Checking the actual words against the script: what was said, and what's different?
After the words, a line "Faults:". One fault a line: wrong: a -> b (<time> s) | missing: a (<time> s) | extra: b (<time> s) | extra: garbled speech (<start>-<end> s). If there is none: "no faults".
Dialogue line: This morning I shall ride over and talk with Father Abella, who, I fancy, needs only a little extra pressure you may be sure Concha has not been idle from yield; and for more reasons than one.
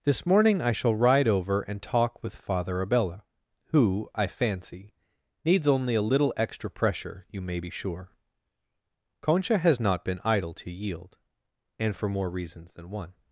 This morning I shall ride over and talk with Father Abella, who, I fancy, needs only a little extra pressure you may be sure Concha has not been idle to yield; and for more reasons than one.
Faults:
wrong: from -> to (10.5 s)